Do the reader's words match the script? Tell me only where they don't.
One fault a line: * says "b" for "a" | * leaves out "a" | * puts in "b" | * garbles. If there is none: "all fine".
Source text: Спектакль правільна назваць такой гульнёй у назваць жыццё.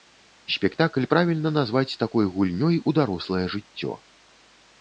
* says "дарослае" for "назваць"